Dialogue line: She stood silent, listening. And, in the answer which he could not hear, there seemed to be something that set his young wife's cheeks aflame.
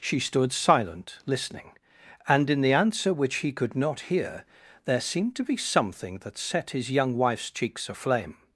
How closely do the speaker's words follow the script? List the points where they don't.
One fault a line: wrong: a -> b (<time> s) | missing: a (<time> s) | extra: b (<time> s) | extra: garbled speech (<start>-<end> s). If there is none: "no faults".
no faults